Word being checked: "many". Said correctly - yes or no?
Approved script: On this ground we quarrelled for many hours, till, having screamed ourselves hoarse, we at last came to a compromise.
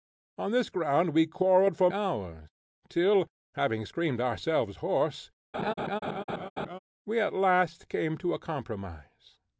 no